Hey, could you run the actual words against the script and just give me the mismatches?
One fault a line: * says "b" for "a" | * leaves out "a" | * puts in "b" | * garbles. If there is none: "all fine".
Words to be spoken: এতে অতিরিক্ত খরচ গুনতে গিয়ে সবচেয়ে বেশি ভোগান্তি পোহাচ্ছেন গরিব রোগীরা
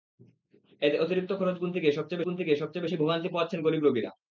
* puts in "গুনতে গিয়ে সবচেয়ে"